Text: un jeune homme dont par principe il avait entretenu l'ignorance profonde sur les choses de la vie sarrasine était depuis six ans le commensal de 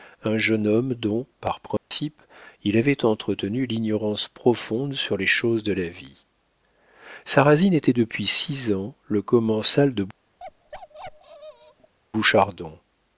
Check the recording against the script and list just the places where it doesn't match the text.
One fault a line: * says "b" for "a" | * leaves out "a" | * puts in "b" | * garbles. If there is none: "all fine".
all fine